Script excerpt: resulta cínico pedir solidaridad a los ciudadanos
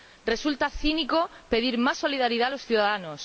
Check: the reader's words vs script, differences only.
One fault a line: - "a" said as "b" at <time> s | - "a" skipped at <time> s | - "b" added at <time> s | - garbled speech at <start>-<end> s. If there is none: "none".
- "más" added at 1.8 s